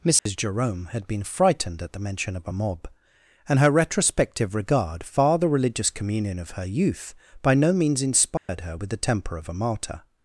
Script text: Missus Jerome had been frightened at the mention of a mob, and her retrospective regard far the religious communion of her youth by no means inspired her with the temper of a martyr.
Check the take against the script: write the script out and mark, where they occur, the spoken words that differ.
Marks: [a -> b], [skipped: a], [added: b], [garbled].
Missus Jerome had been frightened at the mention of a mob, and her retrospective regard far the religious communion of her youth by no means inspired her with the temper of a martyr.